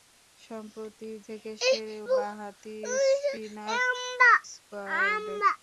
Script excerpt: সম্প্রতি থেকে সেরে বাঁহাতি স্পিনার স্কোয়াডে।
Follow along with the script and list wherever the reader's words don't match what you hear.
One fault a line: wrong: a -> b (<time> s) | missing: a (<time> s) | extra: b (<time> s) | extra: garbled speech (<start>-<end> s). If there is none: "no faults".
no faults